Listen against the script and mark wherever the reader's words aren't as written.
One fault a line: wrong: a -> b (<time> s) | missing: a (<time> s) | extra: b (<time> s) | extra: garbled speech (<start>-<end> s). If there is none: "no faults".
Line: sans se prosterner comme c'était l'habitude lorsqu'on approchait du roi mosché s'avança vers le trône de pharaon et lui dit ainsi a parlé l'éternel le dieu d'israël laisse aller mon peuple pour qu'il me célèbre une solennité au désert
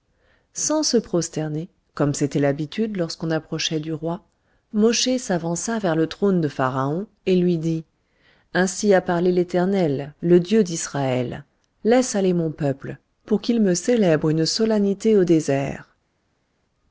no faults